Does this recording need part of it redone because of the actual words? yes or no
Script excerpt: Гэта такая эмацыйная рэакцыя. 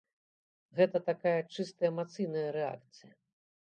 yes